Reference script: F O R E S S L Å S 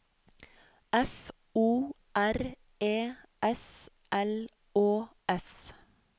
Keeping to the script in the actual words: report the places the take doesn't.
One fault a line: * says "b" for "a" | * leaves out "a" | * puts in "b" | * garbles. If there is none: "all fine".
* leaves out "S"